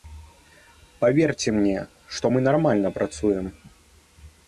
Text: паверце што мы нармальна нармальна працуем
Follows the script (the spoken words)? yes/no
no